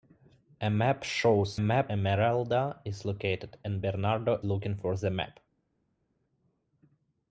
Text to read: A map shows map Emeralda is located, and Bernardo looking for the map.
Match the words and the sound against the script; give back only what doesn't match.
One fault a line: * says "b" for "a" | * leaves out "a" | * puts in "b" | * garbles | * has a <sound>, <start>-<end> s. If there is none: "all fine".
all fine